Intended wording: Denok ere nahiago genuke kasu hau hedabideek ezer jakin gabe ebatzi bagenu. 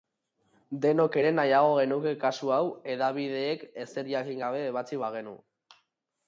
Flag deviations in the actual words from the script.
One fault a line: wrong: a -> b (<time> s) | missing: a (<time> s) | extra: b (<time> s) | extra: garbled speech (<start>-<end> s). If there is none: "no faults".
no faults